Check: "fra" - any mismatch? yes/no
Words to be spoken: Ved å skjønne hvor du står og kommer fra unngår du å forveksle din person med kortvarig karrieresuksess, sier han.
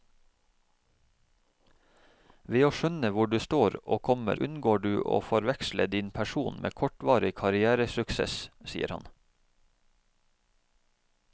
yes